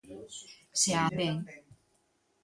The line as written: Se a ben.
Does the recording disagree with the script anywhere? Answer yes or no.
no